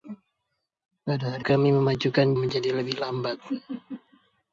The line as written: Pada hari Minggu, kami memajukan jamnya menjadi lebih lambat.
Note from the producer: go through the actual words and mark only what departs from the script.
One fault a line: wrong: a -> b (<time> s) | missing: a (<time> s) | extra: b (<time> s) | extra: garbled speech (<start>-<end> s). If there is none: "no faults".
missing: Minggu (1.4 s)
missing: jamnya (2.3 s)